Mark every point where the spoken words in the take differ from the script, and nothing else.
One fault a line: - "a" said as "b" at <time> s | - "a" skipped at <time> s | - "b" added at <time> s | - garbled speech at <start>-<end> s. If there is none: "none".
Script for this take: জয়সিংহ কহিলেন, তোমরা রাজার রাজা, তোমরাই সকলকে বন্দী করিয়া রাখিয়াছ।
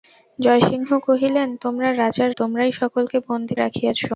- "রাজা" skipped at 2.3 s
- "করিয়া" skipped at 3.5 s